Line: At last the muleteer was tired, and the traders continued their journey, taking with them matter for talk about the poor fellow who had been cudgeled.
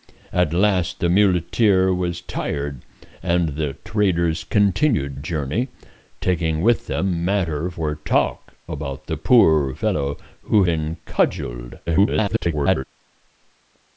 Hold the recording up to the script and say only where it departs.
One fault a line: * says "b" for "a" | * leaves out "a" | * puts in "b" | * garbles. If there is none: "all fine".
* leaves out "their"
* leaves out "had"
* garbles